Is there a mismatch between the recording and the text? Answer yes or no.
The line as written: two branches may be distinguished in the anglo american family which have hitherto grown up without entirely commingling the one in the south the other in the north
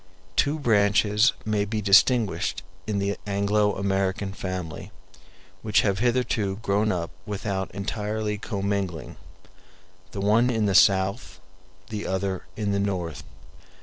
no